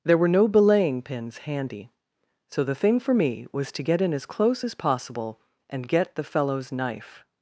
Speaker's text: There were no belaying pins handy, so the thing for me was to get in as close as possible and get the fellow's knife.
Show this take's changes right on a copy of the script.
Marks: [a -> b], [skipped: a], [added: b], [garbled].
There were no belaying pins handy, so the thing for me was to get in as close as possible and get the fellow's knife.